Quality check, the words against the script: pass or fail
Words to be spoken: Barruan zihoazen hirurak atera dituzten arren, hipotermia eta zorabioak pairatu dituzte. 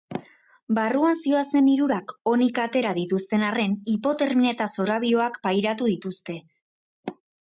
fail